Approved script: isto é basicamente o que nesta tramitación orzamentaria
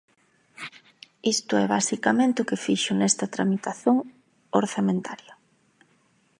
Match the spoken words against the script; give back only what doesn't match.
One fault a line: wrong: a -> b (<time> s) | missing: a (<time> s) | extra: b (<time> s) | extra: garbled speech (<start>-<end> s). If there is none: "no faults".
extra: fixo (2.7 s)